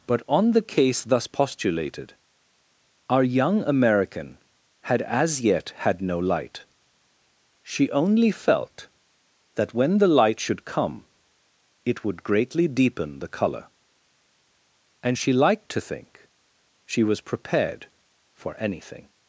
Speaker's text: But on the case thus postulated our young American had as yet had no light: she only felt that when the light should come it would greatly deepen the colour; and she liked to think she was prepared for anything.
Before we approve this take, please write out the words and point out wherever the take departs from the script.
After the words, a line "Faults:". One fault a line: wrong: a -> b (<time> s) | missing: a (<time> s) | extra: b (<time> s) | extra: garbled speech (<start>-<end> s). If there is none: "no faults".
But on the case thus postulated our young American had as yet had no light: she only felt that when the light should come it would greatly deepen the colour; and she liked to think she was prepared for anything.
Faults:
no faults